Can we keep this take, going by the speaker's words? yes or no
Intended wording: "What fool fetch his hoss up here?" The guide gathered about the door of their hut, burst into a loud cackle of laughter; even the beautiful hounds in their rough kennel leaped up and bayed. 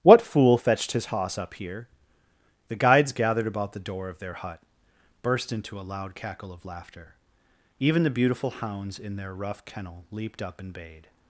no